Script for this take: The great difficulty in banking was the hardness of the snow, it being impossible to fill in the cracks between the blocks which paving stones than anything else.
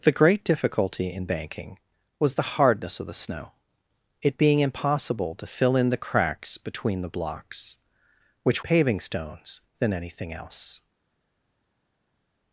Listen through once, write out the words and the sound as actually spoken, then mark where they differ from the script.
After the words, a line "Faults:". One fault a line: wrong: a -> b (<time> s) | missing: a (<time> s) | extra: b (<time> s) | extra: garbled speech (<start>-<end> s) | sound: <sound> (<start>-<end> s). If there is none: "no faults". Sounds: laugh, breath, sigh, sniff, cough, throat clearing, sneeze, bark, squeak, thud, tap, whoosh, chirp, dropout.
The great difficulty in banking was the hardness of the snow, it being impossible to fill in the cracks between the blocks which paving stones than anything else.
Faults:
no faults